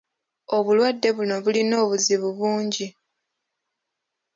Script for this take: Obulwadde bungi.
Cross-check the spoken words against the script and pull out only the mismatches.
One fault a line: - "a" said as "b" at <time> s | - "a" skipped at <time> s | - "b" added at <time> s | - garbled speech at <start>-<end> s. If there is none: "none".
- "buno bulina obuzibu" added at 1.1 s